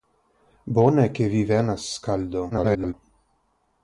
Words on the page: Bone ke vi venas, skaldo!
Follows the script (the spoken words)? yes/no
no